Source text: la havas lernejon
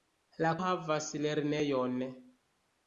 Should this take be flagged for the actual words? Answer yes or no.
no